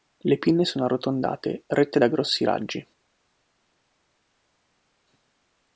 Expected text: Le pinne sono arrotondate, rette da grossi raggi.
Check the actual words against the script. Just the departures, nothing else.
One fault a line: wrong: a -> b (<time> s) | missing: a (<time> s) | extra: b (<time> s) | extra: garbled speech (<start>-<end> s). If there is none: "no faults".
no faults